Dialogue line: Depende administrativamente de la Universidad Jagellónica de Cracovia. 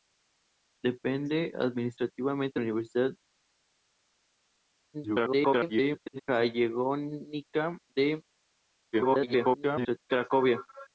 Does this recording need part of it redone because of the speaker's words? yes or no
yes